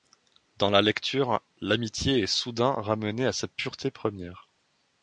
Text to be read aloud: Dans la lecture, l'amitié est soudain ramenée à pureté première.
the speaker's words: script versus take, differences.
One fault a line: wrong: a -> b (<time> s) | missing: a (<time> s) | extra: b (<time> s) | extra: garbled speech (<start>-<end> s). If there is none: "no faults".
extra: sa (3.3 s)